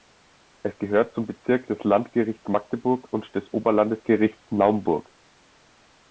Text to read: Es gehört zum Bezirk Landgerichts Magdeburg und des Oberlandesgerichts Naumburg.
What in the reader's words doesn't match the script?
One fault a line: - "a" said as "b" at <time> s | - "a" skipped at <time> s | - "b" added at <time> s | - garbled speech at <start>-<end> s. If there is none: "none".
- "des" added at 1.7 s